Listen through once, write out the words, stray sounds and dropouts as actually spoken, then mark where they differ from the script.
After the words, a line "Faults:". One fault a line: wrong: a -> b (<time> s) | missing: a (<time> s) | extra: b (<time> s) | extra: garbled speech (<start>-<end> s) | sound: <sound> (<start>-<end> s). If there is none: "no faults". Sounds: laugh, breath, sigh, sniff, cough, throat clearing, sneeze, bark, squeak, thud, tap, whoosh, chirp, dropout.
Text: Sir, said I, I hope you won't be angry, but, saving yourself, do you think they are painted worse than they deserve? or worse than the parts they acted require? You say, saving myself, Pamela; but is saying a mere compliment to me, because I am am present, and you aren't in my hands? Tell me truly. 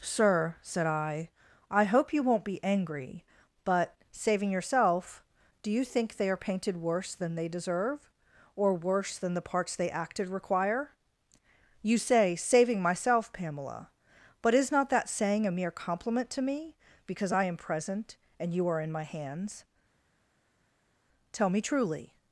Sir, said I, I hope you won't be angry, but, saving yourself, do you think they are painted worse than they deserve? or worse than the parts they acted require? You say, saving myself, Pamela; but is not that saying a mere compliment to me, because I am present, and you are in my hands? Tell me truly.
Faults:
extra: not that (14.7 s)
missing: am (17.6 s)
wrong: aren't -> are (18.7 s)